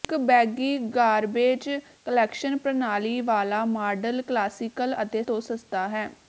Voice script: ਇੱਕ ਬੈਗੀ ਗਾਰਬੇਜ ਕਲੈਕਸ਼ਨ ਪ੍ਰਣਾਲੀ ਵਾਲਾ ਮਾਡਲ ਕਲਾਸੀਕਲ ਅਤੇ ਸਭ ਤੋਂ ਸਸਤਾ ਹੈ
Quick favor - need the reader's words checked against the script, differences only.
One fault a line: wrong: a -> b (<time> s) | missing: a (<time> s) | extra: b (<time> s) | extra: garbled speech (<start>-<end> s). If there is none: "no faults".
missing: ਸਭ (5.2 s)